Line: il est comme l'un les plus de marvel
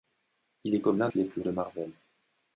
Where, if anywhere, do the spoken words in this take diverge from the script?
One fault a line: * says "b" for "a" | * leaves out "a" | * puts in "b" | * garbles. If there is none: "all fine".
all fine